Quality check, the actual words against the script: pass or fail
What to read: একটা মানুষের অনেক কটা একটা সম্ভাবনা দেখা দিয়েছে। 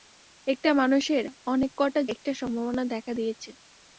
pass